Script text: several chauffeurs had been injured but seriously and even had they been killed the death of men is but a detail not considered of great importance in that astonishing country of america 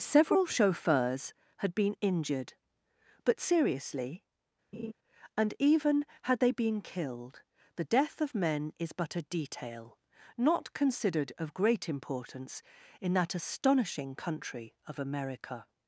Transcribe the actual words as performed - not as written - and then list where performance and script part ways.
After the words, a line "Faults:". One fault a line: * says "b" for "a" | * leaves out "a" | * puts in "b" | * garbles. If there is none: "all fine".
several chauffeurs had been injured but seriously and even had they been killed the death of men is but a detail not considered of great importance in that astonishing country of america
Faults:
all fine